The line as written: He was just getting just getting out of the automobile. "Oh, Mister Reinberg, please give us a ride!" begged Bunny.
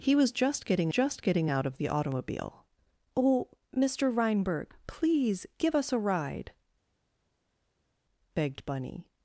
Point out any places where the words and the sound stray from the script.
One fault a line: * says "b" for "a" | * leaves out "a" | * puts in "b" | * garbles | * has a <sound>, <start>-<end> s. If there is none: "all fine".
all fine